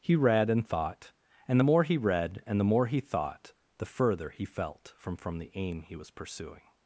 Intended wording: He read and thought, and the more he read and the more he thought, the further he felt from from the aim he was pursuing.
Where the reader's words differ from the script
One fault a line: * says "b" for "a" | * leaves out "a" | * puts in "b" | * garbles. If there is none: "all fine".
all fine